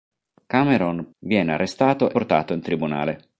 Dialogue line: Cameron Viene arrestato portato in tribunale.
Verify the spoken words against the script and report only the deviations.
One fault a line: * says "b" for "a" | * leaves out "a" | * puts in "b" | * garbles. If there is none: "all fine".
all fine